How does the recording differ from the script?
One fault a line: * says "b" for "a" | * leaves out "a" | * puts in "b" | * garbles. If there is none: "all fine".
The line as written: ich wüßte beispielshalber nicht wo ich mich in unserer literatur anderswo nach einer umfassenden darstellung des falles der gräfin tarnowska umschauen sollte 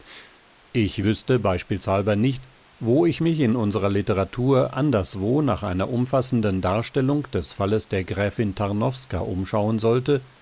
all fine